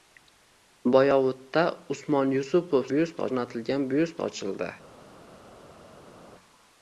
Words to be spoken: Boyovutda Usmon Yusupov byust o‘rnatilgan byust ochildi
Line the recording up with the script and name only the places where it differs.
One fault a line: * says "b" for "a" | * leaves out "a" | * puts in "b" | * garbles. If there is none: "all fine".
all fine